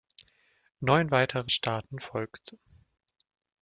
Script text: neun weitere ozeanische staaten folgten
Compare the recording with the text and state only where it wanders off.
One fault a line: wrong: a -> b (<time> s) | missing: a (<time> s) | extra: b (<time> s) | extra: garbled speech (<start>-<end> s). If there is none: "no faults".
missing: ozeanische (1.5 s)